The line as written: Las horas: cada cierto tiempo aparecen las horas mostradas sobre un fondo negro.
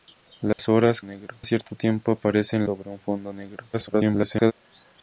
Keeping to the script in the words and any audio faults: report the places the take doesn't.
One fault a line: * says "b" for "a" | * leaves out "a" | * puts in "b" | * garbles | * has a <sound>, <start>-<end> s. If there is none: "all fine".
* has a dropout, 0.5-0.6 s
* says "negro" for "cada"
* leaves out "las horas mostradas"
* garbles